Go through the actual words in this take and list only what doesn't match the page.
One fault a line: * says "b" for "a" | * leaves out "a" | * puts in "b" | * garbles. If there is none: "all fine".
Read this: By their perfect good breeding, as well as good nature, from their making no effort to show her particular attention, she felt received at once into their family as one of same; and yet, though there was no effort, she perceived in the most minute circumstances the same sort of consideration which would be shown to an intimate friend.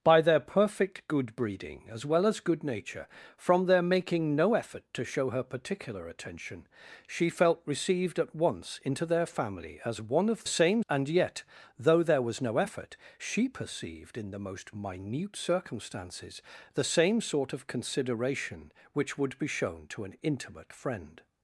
all fine